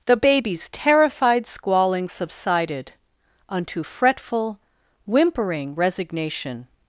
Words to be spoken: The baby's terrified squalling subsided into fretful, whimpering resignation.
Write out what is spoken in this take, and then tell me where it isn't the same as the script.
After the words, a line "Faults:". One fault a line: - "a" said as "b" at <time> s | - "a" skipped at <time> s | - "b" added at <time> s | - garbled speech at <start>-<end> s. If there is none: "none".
The baby's terrified squalling subsided unto fretful, whimpering resignation.
Faults:
- "into" said as "unto" at 3.5 s